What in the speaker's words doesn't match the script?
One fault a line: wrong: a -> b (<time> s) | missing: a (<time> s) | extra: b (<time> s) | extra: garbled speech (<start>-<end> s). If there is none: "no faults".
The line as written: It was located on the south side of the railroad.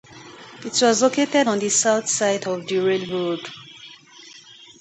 no faults